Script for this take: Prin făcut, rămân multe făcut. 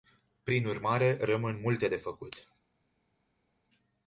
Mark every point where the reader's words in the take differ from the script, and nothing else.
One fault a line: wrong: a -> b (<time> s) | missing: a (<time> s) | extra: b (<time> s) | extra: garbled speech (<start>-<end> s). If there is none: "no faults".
wrong: făcut -> urmare (0.7 s)
extra: de (1.8 s)